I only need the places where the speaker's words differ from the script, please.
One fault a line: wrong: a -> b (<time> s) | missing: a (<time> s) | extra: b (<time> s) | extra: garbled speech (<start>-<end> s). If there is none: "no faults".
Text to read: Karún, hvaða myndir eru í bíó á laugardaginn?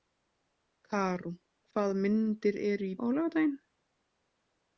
missing: bíó (3.0 s)